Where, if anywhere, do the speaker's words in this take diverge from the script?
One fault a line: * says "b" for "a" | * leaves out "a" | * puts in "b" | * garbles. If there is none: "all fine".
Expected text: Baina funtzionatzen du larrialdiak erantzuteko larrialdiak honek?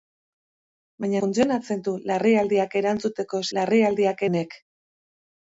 all fine